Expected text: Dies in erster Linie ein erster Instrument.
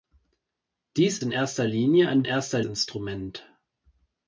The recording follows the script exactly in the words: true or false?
true